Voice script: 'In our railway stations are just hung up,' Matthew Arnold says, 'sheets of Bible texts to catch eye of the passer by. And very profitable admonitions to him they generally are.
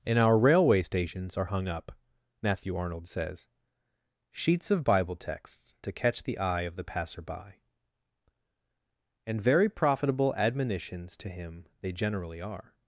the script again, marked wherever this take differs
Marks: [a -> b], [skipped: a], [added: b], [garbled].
'In our railway stations are [skipped: just] hung up,' Matthew Arnold says, 'sheets of Bible texts to catch [added: the] eye of the passer by. And very profitable admonitions to him they generally are.